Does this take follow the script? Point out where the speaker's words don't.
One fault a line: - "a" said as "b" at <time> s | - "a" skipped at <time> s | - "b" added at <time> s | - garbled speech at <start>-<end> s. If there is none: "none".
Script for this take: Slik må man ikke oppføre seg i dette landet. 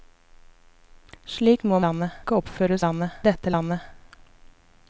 - "man" said as "landet" at 1.9 s
- "seg" said as "landet" at 2.9 s